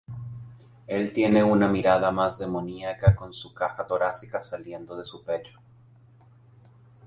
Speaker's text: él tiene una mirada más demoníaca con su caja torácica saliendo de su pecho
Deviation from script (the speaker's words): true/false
false